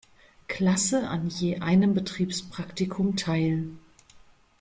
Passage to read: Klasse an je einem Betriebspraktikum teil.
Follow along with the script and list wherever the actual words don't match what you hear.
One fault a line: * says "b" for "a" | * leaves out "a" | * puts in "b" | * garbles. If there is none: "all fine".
all fine